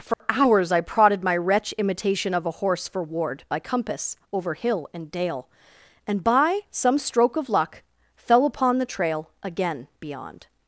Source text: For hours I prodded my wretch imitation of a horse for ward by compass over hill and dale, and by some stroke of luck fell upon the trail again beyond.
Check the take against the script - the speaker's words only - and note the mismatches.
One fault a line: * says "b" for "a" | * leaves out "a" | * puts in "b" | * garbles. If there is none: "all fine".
all fine